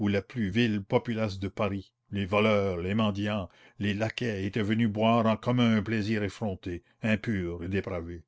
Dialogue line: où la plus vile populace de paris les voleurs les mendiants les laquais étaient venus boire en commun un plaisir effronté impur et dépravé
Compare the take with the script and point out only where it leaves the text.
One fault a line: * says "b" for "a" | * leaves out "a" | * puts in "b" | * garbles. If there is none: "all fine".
all fine